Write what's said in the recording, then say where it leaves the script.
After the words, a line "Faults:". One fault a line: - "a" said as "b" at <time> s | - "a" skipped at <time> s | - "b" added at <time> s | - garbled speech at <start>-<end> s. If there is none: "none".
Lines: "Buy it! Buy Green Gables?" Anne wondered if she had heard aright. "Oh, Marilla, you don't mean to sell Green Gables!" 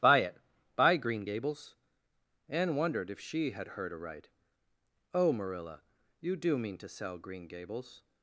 "Buy it! Buy Green Gables?" Anne wondered if she had heard aright. "Oh, Marilla, you do mean to sell Green Gables!"
Faults:
- "don't" said as "do" at 6.4 s